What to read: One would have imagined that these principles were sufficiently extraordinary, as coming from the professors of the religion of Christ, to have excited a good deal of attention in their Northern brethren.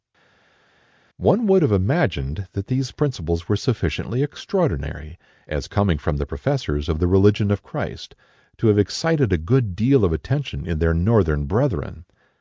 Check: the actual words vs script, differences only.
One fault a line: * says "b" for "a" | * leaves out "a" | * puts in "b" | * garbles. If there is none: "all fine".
all fine